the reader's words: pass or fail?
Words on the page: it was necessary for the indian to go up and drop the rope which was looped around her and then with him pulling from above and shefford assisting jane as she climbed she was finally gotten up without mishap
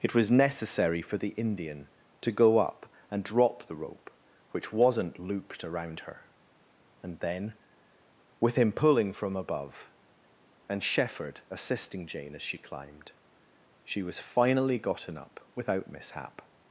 fail